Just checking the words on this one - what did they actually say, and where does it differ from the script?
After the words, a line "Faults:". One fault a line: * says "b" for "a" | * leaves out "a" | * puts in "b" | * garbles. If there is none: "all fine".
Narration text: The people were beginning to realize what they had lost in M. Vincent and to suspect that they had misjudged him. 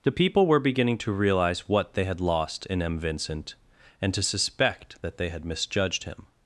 The people were beginning to realize what they had lost in M. Vincent and to suspect that they had misjudged him.
Faults:
all fine